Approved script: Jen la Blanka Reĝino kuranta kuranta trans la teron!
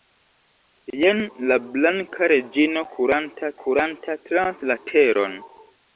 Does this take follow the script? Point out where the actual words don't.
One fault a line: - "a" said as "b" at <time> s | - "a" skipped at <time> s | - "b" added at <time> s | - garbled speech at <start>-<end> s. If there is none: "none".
none